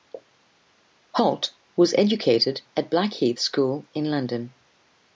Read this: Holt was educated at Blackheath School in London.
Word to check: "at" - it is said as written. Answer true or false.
true